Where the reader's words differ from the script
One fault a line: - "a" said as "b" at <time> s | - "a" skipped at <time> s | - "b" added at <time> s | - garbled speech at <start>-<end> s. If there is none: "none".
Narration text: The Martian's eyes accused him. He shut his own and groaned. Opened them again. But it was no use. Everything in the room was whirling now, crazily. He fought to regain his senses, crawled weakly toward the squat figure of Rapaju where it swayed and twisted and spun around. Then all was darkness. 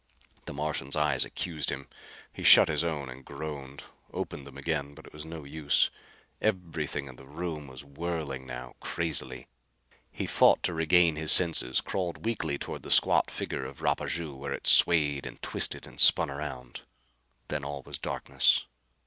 none